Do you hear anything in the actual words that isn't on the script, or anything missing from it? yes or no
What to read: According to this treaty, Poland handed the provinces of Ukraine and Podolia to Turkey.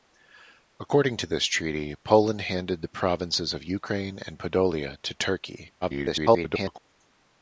yes